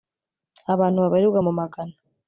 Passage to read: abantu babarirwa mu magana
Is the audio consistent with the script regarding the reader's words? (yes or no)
yes